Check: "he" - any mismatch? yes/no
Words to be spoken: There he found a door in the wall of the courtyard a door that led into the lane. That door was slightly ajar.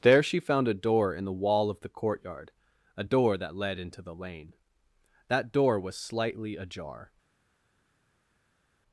yes